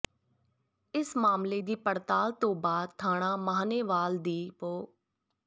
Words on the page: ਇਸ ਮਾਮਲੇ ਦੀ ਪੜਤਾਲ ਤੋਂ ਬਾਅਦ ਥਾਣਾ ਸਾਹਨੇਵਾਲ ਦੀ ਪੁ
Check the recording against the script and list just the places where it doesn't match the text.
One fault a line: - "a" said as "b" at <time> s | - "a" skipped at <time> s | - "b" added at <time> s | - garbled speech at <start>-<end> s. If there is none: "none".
none